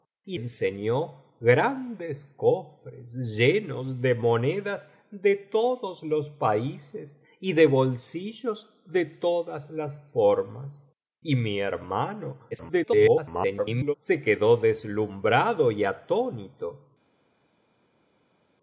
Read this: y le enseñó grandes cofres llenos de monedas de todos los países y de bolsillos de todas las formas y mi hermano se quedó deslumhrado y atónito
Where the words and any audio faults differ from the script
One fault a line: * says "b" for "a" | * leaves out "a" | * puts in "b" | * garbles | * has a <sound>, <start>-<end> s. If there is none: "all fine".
* leaves out "le"
* garbles